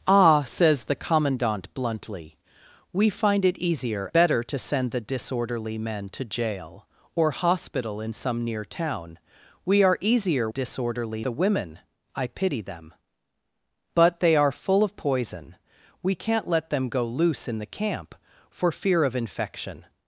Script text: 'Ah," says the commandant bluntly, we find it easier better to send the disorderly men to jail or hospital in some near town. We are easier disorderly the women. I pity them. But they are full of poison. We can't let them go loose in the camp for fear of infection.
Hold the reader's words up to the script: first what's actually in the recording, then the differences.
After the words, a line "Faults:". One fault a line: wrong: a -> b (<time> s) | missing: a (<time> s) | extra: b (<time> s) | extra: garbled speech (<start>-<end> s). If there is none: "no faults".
'Ah," says the commandant bluntly, we find it easier better to send the disorderly men to jail or hospital in some near town. We are easier disorderly the women. I pity them. But they are full of poison. We can't let them go loose in the camp for fear of infection.
Faults:
no faults